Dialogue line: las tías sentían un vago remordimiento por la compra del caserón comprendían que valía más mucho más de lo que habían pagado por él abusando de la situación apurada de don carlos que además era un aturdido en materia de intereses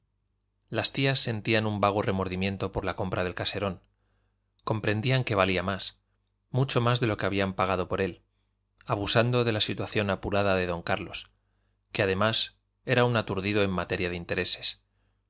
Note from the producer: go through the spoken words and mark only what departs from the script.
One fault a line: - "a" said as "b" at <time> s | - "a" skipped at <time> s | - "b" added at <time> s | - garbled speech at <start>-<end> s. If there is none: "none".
none